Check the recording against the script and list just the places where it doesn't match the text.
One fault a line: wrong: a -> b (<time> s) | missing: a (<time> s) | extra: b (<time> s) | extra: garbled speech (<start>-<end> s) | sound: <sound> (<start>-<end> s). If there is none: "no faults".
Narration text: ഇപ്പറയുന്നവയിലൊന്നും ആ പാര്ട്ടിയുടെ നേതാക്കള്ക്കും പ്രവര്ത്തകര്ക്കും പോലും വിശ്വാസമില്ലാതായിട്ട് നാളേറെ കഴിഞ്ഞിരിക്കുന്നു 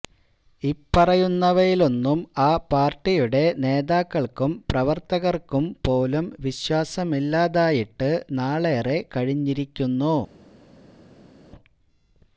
no faults